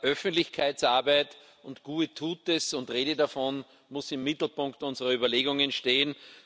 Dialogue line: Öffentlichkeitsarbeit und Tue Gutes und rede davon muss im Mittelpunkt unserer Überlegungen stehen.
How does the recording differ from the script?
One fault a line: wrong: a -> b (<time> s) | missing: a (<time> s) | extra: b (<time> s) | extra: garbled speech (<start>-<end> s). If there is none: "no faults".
no faults